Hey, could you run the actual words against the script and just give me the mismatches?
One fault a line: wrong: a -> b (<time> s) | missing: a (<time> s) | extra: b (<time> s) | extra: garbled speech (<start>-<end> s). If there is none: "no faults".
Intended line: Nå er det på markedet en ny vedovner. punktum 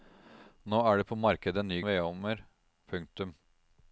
no faults